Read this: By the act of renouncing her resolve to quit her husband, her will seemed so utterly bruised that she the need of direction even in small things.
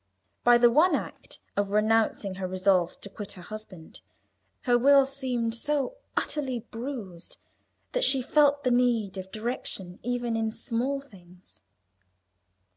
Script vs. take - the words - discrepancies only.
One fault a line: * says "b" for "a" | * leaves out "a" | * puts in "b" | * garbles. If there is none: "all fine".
* puts in "one"
* puts in "felt"